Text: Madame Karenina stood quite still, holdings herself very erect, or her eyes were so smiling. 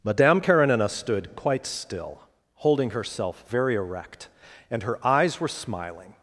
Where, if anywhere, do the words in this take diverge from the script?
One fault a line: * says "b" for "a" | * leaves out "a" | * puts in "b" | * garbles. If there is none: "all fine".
* says "holding" for "holdings"
* says "and" for "or"
* leaves out "so"